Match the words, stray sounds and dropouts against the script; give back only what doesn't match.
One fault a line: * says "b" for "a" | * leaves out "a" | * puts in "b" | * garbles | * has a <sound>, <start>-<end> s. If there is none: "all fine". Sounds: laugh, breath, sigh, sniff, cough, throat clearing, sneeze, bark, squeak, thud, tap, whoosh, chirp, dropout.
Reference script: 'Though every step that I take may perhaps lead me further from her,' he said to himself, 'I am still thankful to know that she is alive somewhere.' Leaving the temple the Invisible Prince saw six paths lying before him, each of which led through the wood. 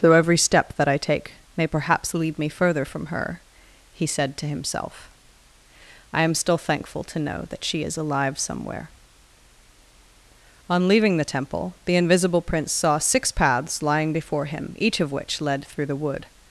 * puts in "On"